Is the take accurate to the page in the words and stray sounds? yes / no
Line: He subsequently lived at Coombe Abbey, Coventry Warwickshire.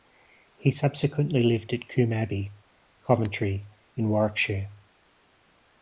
no